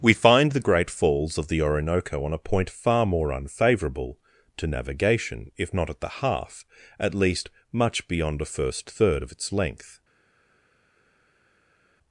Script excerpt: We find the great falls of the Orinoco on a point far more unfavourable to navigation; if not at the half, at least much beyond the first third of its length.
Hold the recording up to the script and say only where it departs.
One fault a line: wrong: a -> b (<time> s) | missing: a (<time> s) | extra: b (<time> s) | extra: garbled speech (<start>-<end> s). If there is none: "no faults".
wrong: the -> a (8.4 s)